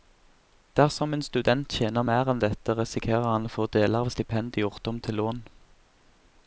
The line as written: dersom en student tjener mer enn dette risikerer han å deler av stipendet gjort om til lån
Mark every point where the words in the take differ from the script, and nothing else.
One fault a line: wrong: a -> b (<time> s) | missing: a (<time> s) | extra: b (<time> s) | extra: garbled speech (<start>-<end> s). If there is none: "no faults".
extra: få (3.6 s)